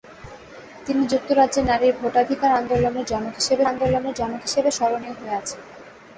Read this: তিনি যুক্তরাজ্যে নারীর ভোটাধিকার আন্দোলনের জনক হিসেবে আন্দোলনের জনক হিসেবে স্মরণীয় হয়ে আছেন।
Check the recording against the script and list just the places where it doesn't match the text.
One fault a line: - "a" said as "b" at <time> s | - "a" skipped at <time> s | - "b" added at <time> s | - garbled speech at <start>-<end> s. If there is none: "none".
none